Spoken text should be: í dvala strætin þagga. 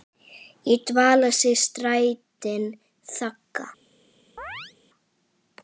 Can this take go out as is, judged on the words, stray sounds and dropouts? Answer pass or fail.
fail